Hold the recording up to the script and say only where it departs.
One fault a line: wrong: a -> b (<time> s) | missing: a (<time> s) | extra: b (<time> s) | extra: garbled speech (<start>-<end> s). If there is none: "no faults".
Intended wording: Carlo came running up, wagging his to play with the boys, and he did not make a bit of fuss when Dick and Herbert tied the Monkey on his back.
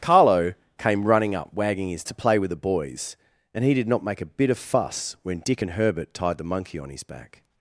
no faults